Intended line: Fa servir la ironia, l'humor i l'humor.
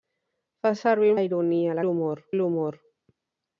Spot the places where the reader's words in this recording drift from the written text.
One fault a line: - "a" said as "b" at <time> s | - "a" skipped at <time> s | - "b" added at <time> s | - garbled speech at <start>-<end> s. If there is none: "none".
none